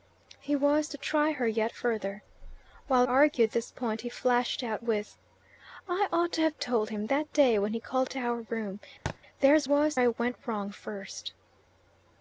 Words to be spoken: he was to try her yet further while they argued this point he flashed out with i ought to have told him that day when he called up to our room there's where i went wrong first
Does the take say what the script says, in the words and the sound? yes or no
no